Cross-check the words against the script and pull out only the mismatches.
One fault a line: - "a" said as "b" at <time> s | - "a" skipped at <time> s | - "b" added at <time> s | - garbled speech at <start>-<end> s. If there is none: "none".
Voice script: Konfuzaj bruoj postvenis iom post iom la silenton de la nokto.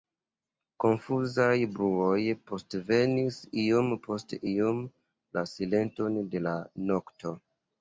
none